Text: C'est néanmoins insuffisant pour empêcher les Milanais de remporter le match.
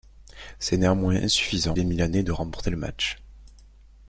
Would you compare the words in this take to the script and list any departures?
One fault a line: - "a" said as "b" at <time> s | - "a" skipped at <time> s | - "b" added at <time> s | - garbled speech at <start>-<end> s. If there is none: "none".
- "pour empêcher" skipped at 1.8 s